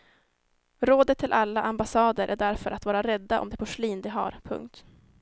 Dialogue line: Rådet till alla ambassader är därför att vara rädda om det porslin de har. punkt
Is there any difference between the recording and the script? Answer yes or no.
no